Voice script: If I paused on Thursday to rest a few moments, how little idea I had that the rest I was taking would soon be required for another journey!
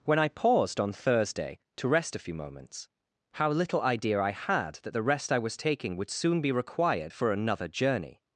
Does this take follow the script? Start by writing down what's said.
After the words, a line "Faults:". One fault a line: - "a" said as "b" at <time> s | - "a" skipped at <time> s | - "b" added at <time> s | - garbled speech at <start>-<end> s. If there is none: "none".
When I paused on Thursday to rest a few moments, how little idea I had that the rest I was taking would soon be required for another journey!
Faults:
- "If" said as "When" at 0.0 s